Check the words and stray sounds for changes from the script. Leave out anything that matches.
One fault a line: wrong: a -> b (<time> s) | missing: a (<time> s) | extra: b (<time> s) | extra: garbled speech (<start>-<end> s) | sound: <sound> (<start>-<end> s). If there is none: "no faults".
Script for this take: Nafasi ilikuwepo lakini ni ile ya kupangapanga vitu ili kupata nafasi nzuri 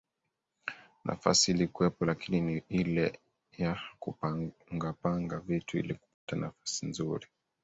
sound: dropout (6.1-6.3 s)